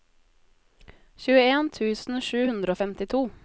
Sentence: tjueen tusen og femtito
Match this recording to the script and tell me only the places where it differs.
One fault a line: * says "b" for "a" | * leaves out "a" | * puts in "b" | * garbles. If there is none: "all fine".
* puts in "sju hundre"